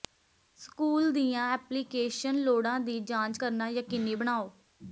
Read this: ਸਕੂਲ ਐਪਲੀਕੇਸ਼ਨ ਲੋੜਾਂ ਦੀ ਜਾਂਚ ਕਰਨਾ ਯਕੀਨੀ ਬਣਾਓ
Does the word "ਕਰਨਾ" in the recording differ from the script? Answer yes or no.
no